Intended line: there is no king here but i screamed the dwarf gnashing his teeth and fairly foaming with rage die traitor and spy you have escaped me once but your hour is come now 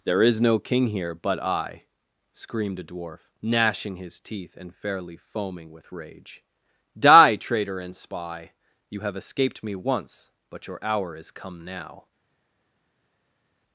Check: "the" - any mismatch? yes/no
yes